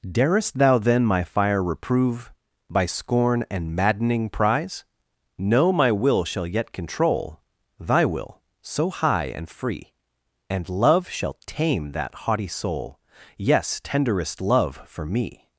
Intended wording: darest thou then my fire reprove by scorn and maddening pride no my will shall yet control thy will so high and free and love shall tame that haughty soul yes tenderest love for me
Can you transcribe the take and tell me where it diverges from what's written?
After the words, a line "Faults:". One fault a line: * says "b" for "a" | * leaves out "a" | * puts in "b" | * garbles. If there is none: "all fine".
darest thou then my fire reprove by scorn and maddening prize no my will shall yet control thy will so high and free and love shall tame that haughty soul yes tenderest love for me
Faults:
* says "prize" for "pride"